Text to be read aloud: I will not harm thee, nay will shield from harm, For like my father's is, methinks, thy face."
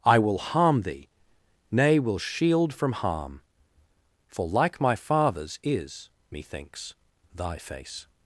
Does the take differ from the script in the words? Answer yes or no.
yes